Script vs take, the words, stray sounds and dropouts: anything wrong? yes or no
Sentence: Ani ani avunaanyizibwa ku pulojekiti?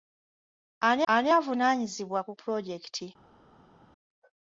no